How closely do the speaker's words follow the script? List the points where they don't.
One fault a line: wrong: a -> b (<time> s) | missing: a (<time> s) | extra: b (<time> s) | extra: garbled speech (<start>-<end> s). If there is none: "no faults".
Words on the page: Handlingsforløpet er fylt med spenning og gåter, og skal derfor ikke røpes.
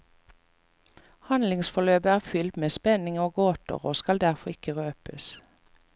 no faults